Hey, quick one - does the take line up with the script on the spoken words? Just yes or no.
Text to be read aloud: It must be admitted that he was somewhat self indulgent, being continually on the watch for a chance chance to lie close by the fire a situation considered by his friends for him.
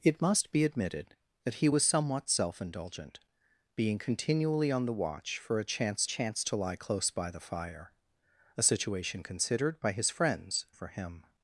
yes